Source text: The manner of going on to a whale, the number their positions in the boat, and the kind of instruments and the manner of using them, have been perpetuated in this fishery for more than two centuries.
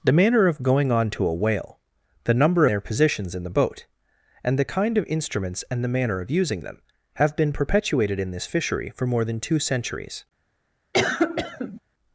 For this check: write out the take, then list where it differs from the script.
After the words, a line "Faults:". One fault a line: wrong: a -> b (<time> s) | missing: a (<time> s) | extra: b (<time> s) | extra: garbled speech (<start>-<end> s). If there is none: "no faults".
The manner of going on to a whale, the number their positions in the boat, and the kind of instruments and the manner of using them, have been perpetuated in this fishery for more than two centuries.
Faults:
no faults